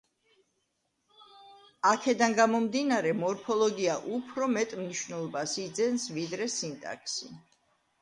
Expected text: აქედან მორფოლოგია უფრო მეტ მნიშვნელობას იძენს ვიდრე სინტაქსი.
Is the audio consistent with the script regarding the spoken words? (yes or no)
no